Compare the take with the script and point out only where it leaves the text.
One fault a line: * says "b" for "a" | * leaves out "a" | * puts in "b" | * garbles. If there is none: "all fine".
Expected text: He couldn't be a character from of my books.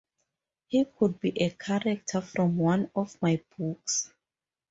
* says "could" for "couldn't"
* puts in "one"